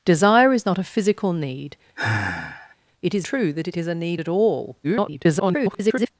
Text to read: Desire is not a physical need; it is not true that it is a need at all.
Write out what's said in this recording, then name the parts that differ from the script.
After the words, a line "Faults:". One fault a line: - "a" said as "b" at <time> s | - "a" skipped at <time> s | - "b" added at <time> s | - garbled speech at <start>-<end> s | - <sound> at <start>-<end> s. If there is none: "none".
Desire is not a physical need; it is true that it is a need at all. [garbled]
Faults:
- sigh at 2.0-2.8 s
- "not" skipped at 3.3 s
- garbled speech at 4.8-6.1 s